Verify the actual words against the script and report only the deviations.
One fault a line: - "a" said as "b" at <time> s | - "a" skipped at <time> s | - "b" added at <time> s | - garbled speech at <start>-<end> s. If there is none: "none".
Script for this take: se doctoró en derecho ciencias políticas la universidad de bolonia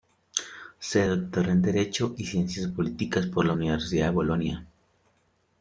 - "y" added at 2.2 s
- "por" added at 3.3 s